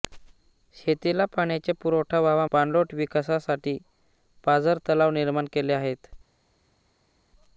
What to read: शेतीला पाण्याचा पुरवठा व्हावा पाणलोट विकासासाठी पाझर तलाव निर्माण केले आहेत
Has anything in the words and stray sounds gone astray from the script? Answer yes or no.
no